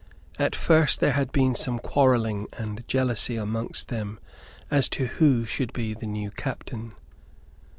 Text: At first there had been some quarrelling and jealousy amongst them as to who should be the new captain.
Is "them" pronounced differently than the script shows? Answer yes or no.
no